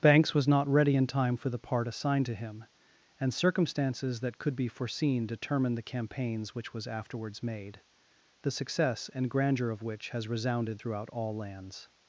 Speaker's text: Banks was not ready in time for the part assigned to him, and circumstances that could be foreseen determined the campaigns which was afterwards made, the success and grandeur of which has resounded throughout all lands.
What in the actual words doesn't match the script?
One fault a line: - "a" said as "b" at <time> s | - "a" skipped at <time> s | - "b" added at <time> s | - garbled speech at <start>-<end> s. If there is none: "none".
none